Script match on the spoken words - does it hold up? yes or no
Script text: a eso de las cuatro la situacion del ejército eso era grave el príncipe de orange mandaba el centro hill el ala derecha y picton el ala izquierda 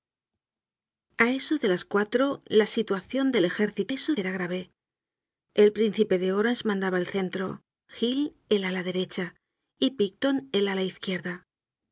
yes